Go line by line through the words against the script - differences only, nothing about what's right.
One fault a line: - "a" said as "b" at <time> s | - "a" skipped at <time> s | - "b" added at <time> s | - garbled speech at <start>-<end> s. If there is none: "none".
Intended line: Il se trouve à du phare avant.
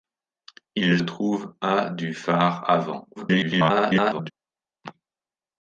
- "se" skipped at 1.0 s
- garbled speech at 3.2-4.3 s